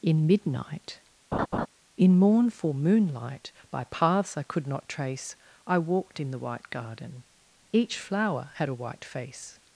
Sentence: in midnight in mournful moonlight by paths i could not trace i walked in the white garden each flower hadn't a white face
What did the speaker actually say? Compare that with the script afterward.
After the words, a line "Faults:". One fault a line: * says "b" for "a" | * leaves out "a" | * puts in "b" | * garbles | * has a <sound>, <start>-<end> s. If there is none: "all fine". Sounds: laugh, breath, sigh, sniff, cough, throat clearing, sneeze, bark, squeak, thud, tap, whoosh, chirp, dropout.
in midnight in mournful moonlight by paths i could not trace i walked in the white garden each flower had a white face
Faults:
* has a laugh, 1.3-1.7 s
* says "had" for "hadn't"